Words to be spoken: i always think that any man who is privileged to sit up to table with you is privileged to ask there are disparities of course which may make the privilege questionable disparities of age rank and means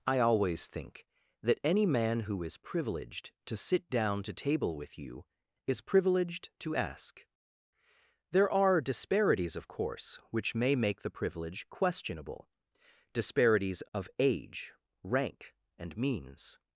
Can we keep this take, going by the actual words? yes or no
no